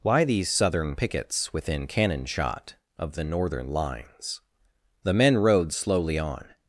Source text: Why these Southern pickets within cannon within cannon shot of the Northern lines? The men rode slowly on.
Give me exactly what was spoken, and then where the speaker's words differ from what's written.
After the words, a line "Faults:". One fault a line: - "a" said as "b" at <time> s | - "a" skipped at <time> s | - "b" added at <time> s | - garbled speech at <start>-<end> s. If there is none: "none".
Why these Southern pickets within cannon shot of the Northern lines? The men rode slowly on.
Faults:
- "within cannon" skipped at 2.2 s